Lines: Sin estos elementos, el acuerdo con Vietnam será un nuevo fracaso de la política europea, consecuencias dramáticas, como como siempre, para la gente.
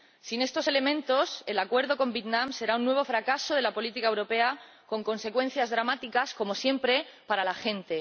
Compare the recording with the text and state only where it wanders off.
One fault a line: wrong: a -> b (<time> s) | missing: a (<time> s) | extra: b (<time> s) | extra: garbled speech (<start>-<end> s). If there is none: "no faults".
extra: con (4.9 s)
missing: como (6.5 s)